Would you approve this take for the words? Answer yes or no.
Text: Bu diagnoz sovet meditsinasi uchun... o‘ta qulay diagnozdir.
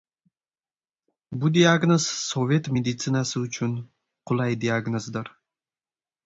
no